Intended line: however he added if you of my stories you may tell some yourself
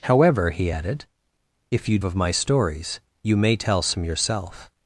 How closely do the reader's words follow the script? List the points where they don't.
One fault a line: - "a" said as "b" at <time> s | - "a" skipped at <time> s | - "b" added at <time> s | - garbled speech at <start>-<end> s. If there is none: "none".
none